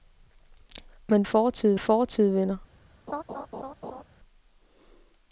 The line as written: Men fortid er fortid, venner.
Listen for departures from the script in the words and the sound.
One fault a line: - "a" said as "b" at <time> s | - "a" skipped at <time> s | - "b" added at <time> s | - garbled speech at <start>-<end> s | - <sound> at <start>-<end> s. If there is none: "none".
- laugh at 3.1-4.0 s